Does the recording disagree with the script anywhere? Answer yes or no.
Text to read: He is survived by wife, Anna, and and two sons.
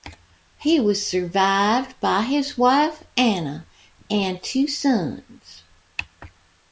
yes